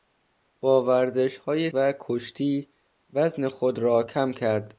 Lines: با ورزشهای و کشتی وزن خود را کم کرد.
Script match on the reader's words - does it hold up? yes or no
yes